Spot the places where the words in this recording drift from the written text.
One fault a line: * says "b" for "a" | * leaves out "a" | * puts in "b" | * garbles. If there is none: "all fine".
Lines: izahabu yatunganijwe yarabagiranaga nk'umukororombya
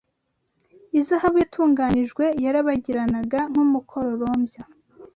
all fine